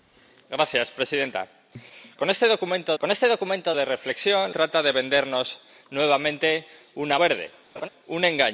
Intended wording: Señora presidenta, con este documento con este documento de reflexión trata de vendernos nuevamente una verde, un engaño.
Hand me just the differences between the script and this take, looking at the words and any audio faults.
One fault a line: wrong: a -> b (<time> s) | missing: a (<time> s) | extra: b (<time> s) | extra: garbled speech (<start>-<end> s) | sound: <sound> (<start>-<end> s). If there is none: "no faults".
sound: laugh (7.8-7.9 s)